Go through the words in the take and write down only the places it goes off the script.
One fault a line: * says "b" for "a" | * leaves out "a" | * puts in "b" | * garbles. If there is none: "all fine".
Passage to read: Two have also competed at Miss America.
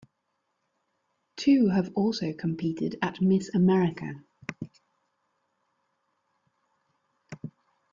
all fine